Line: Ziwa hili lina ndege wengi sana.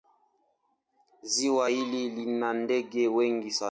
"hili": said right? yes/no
yes